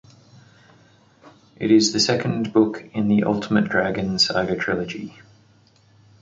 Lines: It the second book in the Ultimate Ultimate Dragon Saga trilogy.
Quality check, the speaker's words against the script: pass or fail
fail